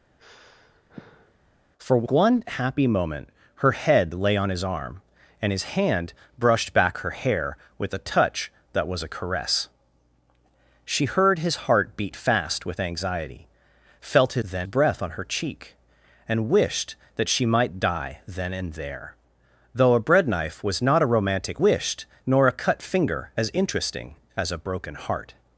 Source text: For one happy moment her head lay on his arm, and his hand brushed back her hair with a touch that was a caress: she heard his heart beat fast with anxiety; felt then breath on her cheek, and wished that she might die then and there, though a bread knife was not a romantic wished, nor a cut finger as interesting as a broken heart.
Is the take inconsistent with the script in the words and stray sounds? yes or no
yes